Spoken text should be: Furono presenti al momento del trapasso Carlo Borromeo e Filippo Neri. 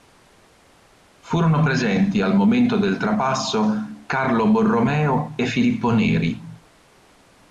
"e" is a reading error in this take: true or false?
false